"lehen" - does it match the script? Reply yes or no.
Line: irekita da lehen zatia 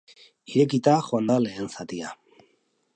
yes